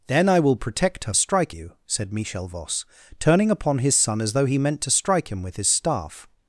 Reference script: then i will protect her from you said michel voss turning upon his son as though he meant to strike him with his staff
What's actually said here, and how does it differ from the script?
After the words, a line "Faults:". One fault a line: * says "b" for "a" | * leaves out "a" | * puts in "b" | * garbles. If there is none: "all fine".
then i will protect her strike you said michel voss turning upon his son as though he meant to strike him with his staff
Faults:
* says "strike" for "from"